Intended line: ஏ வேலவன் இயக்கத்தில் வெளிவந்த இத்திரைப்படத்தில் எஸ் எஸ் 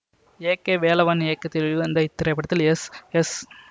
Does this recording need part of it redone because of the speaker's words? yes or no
yes